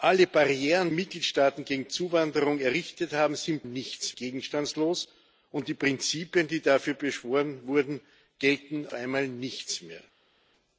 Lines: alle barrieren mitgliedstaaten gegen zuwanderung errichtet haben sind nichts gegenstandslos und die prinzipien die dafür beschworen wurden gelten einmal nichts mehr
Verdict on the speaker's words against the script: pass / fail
pass